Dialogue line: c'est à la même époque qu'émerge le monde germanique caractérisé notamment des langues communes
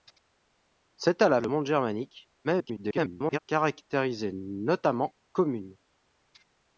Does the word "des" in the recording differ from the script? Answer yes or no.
yes